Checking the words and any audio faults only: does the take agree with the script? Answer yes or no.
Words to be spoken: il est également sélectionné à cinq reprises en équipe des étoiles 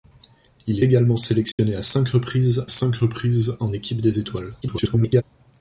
no